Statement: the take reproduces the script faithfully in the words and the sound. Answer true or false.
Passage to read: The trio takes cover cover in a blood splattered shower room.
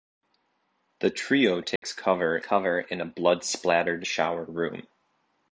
false